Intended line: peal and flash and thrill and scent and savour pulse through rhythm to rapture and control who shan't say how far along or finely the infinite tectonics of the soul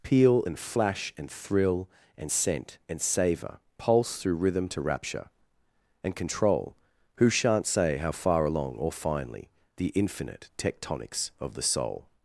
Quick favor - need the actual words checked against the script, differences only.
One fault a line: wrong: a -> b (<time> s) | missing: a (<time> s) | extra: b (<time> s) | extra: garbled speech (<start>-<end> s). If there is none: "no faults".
no faults